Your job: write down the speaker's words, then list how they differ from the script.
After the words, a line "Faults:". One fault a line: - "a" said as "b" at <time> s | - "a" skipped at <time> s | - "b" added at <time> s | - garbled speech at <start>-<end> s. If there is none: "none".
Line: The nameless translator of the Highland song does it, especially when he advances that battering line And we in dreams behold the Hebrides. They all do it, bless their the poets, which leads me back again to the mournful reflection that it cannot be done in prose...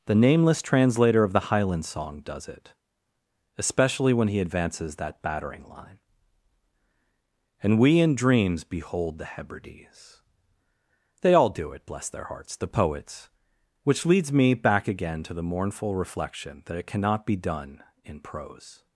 The nameless translator of the Highland song does it, especially when he advances that battering line And we in dreams behold the Hebrides. They all do it, bless their hearts, the poets, which leads me back again to the mournful reflection that it cannot be done in prose...
Faults:
- "hearts" added at 12.2 s